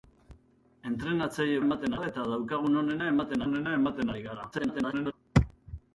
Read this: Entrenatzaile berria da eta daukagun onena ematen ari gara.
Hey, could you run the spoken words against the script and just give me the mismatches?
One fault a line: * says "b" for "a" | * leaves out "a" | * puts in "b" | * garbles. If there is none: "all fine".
* says "ematen" for "berria"
* puts in "onena ematen"
* garbles